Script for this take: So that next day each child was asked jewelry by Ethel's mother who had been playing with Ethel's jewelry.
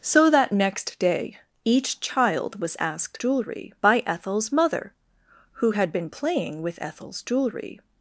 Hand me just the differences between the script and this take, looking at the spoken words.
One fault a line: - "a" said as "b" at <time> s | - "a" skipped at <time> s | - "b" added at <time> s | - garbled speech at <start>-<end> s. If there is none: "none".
none